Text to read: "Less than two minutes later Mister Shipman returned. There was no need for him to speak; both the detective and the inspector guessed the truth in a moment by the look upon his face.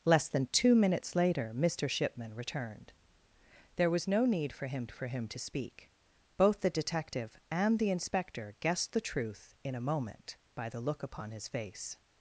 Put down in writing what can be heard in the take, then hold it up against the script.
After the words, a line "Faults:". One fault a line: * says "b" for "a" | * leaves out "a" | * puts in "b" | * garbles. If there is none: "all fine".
"Less than two minutes later Mister Shipman returned. There was no need for him for him to speak; both the detective and the inspector guessed the truth in a moment by the look upon his face.
Faults:
* puts in "for him"